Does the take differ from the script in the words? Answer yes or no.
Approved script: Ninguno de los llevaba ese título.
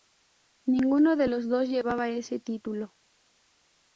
yes